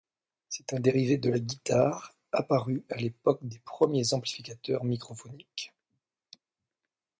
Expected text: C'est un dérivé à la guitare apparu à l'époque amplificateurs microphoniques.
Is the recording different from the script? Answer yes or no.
yes